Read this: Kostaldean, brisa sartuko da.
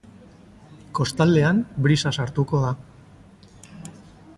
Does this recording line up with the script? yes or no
yes